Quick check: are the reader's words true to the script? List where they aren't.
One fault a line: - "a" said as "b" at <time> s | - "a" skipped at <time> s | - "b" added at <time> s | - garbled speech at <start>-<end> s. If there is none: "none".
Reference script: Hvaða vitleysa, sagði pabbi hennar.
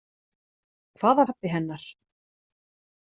- "vitleysa sagði" skipped at 1.2 s